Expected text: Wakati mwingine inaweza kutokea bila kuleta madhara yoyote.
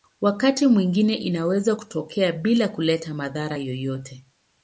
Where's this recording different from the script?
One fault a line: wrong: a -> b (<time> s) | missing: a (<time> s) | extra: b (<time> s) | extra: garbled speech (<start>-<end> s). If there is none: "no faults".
no faults